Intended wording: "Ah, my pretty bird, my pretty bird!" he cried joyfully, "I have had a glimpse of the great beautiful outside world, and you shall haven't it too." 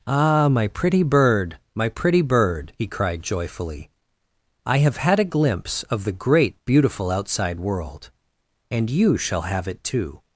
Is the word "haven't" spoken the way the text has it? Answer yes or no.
no